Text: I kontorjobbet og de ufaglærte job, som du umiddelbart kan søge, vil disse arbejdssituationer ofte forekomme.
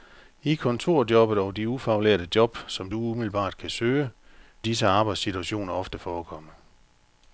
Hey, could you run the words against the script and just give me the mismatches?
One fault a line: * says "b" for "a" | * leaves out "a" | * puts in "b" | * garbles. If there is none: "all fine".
* leaves out "vil"